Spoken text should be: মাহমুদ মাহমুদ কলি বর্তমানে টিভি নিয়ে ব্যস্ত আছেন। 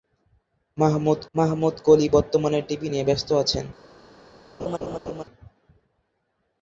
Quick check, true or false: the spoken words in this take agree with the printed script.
true